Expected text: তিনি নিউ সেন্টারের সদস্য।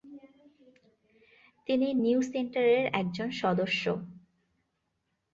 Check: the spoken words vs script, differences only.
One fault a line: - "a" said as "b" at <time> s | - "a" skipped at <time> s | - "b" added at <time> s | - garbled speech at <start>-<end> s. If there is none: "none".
- "একজন" added at 2.9 s